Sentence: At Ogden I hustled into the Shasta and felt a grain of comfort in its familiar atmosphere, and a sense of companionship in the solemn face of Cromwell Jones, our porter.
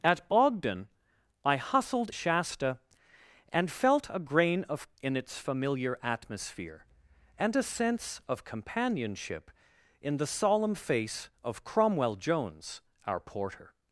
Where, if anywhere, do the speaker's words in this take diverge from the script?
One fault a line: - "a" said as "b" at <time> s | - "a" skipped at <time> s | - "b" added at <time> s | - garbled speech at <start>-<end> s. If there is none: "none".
- "into the" skipped at 2.1 s
- "comfort" skipped at 4.9 s